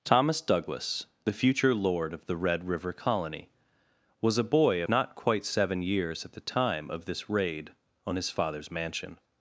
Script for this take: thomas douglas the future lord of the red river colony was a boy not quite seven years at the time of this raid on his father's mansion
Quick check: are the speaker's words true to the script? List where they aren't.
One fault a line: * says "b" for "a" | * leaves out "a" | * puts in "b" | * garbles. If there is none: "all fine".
all fine